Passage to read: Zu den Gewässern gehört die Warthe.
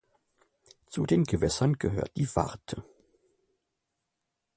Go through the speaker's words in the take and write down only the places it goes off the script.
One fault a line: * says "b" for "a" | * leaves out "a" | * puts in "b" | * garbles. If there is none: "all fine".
all fine